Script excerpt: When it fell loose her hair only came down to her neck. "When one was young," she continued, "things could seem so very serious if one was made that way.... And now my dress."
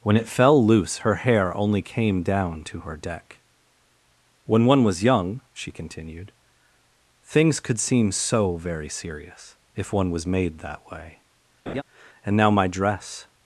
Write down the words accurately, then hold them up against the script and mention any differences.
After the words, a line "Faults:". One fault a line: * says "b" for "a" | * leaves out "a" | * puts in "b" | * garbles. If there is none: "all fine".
When it fell loose her hair only came down to her deck. "When one was young," she continued, "things could seem so very serious if one was made that way.... And now my dress."
Faults:
* says "deck" for "neck"